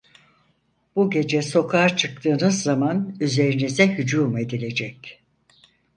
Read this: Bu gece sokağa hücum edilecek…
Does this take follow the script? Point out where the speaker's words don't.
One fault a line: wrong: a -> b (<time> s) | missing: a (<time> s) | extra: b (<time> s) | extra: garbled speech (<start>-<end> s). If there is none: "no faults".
extra: çıktığınız zaman üzerinize (2.0 s)